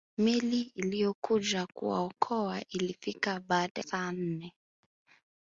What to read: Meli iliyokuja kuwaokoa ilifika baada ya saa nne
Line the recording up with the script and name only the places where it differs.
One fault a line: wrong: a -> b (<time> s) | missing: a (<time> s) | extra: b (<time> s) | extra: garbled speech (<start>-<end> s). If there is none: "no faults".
missing: ya (3.8 s)